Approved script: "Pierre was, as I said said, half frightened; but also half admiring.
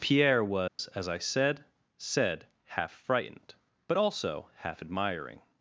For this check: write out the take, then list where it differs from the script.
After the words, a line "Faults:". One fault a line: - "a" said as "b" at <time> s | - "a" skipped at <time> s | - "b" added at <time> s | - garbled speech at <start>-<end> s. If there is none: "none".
"Pierre was, as I said said, half frightened; but also half admiring.
Faults:
none